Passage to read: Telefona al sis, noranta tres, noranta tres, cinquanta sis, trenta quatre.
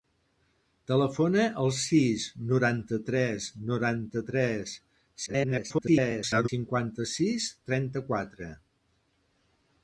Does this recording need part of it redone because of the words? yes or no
yes